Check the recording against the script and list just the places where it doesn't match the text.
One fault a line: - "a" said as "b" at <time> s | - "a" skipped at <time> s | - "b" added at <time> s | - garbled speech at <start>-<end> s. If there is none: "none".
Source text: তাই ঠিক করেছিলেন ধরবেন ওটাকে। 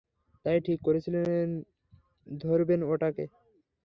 none